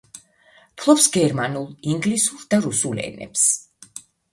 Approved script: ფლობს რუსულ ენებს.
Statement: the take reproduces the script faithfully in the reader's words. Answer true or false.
false